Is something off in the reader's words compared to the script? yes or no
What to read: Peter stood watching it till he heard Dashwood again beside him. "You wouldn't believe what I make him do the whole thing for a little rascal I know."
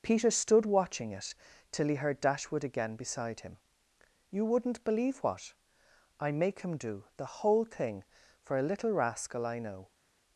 no